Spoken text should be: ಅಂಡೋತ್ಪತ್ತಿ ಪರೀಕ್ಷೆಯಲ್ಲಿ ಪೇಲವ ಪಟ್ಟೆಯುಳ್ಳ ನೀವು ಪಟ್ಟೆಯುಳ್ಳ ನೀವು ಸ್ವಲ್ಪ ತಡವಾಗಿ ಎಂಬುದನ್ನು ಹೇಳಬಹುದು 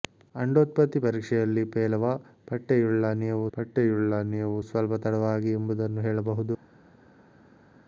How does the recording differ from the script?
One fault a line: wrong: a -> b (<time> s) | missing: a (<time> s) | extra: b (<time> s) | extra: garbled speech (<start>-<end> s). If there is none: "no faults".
no faults